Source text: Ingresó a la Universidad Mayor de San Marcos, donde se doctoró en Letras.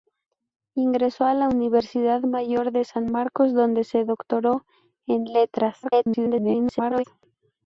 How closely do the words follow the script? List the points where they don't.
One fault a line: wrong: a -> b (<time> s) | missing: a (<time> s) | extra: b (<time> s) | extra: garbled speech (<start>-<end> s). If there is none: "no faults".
extra: garbled speech (5.8-7.0 s)